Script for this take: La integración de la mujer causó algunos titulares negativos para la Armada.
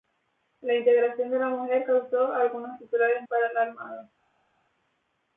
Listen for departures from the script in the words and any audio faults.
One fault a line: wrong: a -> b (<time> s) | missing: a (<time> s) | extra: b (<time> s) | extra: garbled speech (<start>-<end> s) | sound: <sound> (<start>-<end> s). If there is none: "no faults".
missing: negativos (3.2 s)